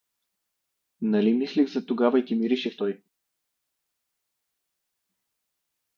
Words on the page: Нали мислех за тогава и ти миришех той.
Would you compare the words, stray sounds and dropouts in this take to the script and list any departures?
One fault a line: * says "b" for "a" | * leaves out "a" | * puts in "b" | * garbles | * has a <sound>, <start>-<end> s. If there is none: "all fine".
all fine